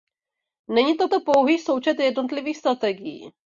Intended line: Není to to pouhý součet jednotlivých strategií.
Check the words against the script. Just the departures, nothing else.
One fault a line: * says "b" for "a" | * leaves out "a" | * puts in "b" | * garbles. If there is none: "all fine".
all fine